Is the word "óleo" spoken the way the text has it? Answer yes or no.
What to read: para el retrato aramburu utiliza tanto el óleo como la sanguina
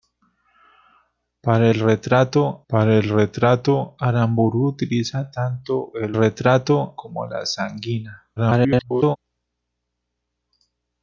no